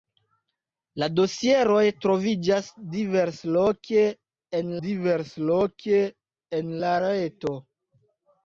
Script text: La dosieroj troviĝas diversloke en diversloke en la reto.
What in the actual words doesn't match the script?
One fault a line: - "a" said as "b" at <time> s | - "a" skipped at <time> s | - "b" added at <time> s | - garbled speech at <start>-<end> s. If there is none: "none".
none